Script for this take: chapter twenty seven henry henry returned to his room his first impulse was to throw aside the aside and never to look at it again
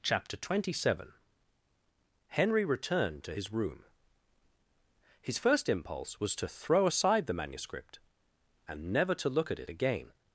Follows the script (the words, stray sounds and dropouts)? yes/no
no